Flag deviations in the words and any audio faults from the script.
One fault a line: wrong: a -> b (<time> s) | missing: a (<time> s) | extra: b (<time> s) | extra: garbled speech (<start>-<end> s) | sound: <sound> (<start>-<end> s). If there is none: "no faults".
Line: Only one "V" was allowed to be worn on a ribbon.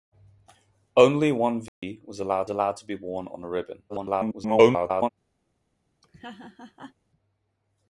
sound: dropout (1.7-1.8 s)
extra: allowed (2.5 s)
extra: garbled speech (3.9-5.1 s)
sound: laugh (6.0-6.9 s)